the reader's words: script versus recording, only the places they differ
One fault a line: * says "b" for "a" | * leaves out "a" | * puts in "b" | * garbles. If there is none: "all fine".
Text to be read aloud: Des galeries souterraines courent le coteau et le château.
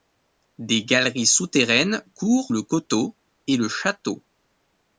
all fine